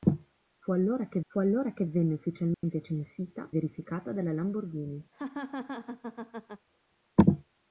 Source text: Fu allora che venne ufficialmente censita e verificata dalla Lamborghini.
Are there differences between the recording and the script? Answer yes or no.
yes